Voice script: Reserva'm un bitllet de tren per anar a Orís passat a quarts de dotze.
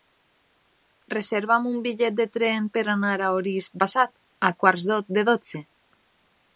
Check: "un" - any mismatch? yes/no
no